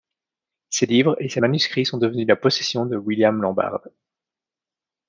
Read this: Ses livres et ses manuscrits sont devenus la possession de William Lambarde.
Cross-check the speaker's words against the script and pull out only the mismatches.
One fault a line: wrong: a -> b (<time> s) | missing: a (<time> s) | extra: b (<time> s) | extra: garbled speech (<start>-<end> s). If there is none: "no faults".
no faults